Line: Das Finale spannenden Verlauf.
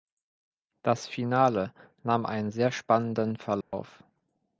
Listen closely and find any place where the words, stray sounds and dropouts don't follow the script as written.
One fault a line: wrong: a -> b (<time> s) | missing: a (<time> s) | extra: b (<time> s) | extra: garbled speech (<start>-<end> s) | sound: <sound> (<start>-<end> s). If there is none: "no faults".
extra: nahm einen sehr (2.0 s)
sound: dropout (3.6-3.7 s)